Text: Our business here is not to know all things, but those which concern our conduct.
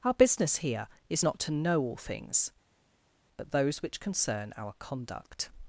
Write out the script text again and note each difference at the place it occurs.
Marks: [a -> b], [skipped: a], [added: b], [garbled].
Our business here is not to know all things, but those which concern our conduct.